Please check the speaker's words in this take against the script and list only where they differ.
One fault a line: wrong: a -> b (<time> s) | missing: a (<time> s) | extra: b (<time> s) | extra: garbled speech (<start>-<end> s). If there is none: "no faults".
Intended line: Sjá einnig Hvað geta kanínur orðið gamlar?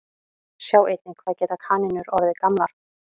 no faults